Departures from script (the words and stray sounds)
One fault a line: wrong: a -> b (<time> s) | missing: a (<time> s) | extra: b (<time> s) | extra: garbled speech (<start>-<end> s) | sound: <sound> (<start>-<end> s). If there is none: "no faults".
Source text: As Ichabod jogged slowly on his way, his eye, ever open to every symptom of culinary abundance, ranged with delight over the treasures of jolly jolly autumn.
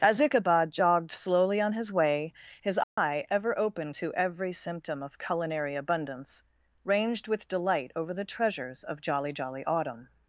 sound: dropout (2.8-3.0 s)